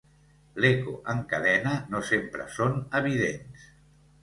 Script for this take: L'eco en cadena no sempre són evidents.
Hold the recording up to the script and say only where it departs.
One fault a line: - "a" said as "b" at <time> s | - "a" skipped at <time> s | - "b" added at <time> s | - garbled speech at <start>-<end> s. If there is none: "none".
none